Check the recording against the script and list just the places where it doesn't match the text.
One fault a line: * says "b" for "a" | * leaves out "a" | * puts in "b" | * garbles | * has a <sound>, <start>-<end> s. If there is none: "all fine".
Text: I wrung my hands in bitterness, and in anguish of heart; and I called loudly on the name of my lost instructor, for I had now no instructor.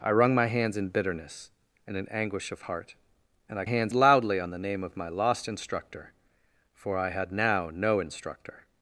* says "hands" for "called"